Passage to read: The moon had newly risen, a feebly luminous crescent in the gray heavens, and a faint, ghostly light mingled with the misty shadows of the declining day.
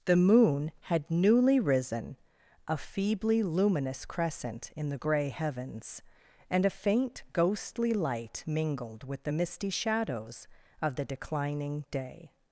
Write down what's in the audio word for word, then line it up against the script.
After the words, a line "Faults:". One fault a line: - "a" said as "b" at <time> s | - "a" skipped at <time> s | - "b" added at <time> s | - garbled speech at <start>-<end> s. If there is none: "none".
The moon had newly risen, a feebly luminous crescent in the gray heavens, and a faint, ghostly light mingled with the misty shadows of the declining day.
Faults:
none